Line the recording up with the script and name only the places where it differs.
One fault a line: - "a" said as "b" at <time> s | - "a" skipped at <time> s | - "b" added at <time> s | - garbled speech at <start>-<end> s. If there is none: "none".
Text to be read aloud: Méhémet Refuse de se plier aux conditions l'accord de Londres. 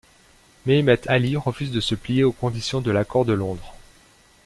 - "Ali" added at 1.1 s
- "de" added at 2.8 s